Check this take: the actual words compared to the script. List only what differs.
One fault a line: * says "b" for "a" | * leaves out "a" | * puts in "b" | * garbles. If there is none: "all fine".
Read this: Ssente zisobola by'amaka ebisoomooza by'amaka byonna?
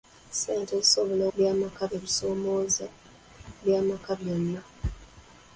all fine